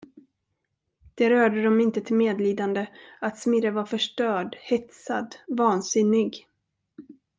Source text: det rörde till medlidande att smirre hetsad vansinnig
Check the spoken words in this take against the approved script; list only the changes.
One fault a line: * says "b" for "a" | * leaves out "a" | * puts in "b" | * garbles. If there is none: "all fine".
* puts in "dem inte"
* puts in "var förstörd"